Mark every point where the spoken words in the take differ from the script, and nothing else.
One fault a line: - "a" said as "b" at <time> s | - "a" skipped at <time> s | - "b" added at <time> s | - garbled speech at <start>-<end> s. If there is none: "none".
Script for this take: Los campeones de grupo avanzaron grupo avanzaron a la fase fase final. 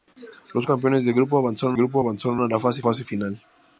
none